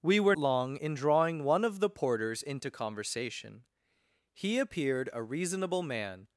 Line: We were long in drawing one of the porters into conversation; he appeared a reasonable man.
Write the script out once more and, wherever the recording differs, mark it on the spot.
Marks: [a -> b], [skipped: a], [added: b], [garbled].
We were long in drawing one of the porters into conversation; he appeared a reasonable man.